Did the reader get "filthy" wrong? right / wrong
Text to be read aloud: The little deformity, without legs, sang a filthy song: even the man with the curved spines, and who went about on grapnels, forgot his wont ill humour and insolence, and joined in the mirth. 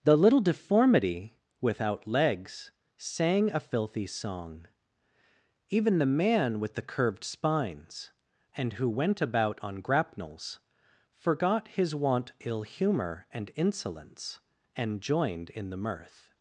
right